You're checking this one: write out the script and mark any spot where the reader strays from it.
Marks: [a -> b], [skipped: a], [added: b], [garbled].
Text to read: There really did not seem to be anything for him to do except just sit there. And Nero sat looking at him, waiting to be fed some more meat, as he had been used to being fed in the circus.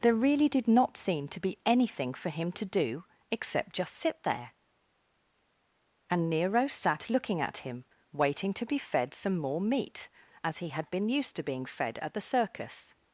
There really did not seem to be anything for him to do except just sit there. And Nero sat looking at him, waiting to be fed some more meat, as he had been used to being fed [in -> at] the circus.